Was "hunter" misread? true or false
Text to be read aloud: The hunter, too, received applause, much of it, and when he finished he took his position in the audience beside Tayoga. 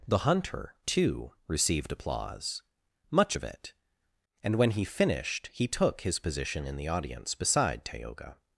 false